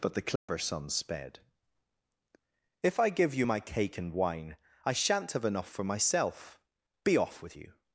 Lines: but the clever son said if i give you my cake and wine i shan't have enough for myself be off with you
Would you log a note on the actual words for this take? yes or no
yes